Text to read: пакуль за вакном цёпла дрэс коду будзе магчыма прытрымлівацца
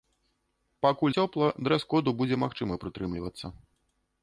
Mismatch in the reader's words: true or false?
true